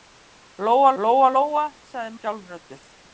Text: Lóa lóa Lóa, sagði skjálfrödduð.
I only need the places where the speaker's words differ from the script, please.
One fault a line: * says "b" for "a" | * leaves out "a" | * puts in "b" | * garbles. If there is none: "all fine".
all fine